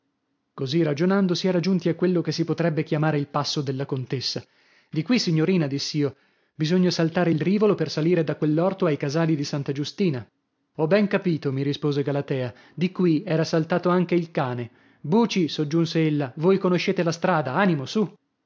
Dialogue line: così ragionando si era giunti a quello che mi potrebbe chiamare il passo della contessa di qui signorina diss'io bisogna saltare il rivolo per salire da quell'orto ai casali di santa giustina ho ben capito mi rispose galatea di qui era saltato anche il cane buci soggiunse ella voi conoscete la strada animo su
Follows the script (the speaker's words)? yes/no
no